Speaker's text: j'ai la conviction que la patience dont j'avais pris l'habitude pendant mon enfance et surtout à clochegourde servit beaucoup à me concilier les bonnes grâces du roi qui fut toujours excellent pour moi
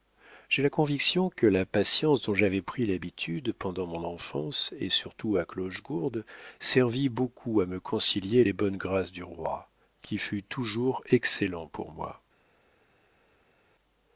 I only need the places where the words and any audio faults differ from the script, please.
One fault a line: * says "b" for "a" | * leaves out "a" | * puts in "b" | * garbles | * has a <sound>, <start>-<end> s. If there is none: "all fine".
all fine